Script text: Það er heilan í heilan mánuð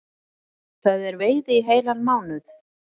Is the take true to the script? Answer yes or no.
no